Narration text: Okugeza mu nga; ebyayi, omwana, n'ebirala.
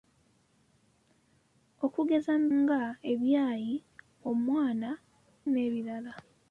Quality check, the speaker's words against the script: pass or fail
pass